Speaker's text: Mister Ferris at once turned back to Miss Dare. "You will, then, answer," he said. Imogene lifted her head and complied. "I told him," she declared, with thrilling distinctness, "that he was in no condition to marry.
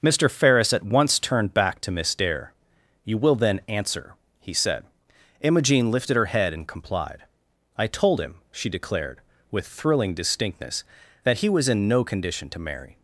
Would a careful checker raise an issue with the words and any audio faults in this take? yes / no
no